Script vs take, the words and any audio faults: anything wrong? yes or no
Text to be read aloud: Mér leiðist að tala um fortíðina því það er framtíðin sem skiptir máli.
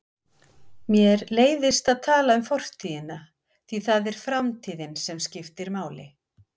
no